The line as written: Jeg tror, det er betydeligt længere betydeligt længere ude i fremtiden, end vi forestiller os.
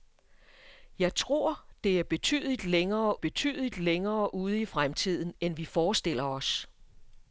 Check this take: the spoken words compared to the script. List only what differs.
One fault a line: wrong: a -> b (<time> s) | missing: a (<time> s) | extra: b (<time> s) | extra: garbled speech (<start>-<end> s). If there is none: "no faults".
no faults